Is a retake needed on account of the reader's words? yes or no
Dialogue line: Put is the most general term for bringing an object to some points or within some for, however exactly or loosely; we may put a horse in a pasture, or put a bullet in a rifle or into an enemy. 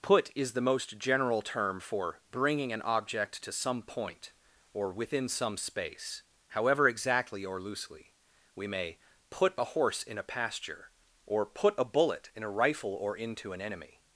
yes